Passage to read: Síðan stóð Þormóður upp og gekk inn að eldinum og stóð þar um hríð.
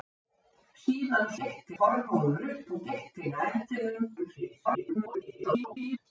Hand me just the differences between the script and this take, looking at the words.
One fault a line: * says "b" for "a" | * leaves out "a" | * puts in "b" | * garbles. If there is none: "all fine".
* says "gekk" for "stóð"
* leaves out "og stóð þar"
* garbles